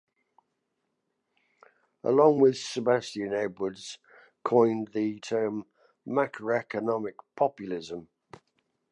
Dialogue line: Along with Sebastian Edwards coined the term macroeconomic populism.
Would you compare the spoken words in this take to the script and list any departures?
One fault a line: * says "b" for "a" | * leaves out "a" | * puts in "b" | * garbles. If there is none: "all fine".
all fine